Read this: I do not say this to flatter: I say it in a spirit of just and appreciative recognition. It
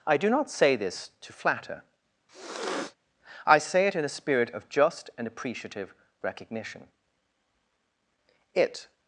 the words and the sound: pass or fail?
fail